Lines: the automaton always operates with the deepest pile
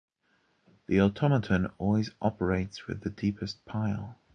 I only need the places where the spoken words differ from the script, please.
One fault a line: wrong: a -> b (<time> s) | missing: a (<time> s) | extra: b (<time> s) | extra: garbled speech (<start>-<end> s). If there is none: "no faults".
no faults